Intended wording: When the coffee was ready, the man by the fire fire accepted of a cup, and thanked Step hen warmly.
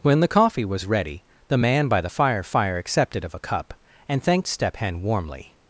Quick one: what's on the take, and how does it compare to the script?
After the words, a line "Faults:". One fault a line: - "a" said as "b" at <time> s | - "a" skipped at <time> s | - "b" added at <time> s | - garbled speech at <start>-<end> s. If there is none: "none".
When the coffee was ready, the man by the fire fire accepted of a cup, and thanked Step hen warmly.
Faults:
none